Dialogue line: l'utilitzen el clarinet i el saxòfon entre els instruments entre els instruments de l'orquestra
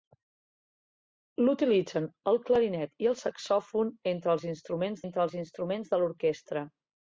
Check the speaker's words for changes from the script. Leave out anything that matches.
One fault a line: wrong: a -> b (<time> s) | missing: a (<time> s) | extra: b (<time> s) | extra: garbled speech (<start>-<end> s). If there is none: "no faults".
no faults